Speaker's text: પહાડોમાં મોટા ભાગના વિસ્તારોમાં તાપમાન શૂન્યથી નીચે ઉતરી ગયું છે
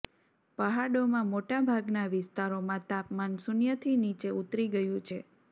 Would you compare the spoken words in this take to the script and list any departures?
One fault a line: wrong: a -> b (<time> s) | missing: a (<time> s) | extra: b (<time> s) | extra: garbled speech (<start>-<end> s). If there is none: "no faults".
no faults